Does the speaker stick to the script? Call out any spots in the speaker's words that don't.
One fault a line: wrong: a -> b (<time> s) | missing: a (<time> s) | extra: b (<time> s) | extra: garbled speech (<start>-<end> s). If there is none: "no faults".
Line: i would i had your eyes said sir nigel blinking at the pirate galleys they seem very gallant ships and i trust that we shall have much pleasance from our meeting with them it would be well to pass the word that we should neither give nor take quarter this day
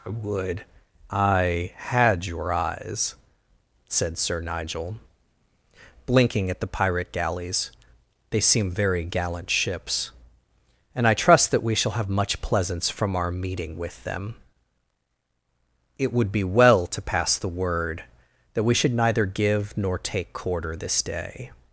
no faults